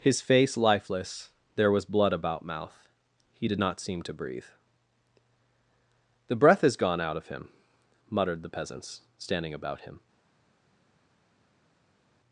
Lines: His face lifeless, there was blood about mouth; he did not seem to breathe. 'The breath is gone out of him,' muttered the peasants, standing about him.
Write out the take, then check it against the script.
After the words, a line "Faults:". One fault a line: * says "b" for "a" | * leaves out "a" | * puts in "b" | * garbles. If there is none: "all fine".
His face lifeless, there was blood about mouth; he did not seem to breathe. 'The breath is gone out of him,' muttered the peasants, standing about him.
Faults:
all fine